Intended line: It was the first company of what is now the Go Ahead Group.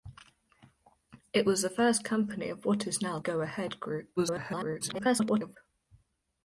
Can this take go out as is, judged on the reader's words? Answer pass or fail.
fail